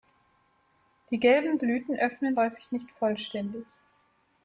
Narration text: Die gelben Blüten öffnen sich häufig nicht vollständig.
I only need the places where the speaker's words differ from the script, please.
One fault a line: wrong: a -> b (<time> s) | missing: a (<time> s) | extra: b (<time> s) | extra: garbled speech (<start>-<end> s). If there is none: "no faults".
missing: sich (2.4 s)